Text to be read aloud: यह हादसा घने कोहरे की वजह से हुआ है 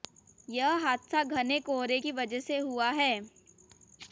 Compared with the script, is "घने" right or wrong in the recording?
right